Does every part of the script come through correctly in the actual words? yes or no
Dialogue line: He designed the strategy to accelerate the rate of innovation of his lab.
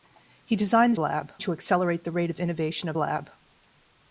no